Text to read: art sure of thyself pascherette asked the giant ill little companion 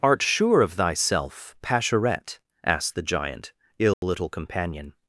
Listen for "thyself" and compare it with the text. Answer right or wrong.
right